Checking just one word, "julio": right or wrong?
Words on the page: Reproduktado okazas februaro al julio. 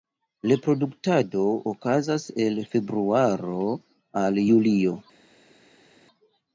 right